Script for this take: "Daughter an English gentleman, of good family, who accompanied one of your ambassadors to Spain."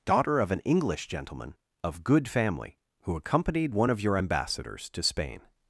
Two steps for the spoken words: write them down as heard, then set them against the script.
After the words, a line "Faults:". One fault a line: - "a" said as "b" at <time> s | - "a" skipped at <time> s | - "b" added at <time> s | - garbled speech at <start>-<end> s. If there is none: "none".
"Daughter of an English gentleman, of good family, who accompanied one of your ambassadors to Spain."
Faults:
- "of" added at 0.4 s